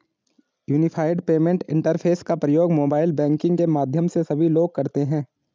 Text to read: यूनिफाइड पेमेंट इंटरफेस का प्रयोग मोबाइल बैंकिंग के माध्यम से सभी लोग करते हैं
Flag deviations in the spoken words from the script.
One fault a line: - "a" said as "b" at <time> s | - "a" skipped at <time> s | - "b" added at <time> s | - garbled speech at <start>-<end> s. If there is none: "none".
none